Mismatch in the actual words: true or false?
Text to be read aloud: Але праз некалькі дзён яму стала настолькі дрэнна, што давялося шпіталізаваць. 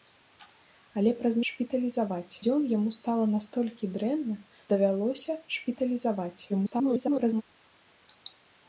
true